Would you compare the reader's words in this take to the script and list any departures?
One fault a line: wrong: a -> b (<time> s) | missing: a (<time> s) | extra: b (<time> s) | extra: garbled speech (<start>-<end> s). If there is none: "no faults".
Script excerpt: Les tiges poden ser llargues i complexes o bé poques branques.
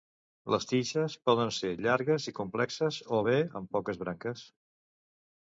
extra: amb (3.6 s)